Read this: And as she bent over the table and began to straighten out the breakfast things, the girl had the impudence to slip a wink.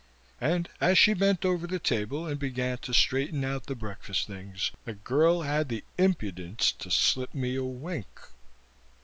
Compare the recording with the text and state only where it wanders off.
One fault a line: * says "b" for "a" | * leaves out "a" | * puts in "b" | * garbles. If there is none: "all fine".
* puts in "me"